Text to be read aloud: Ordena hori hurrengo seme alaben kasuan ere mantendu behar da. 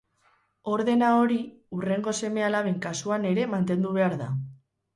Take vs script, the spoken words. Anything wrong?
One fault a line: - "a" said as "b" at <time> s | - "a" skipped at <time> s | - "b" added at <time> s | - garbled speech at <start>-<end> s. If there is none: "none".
none